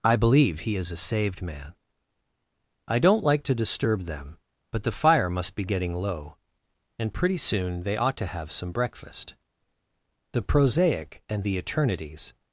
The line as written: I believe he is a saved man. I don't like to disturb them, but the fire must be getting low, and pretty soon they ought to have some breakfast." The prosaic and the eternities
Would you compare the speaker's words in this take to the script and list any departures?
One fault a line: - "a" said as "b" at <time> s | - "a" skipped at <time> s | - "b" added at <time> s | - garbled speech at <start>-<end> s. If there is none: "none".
none